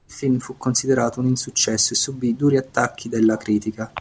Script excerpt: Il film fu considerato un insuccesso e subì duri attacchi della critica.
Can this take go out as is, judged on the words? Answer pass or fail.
pass